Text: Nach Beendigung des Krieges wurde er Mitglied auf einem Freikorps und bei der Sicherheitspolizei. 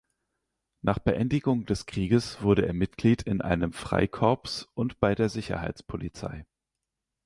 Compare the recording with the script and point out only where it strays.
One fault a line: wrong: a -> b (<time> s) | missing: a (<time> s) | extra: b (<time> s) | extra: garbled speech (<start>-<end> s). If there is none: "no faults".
wrong: auf -> in (3.2 s)